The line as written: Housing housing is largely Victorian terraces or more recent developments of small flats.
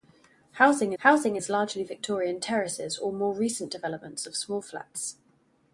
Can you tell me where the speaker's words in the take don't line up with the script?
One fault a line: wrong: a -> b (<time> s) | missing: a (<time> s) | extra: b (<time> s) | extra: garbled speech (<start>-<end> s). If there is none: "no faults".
no faults